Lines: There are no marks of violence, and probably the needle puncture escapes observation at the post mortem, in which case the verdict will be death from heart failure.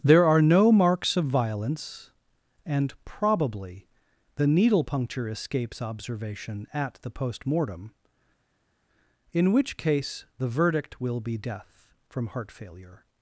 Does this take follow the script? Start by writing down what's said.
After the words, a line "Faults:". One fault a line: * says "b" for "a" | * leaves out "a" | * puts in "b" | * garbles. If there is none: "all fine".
There are no marks of violence, and probably the needle puncture escapes observation at the post mortem, in which case the verdict will be death from heart failure.
Faults:
all fine